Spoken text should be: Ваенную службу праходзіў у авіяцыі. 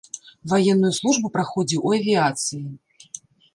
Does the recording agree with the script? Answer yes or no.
yes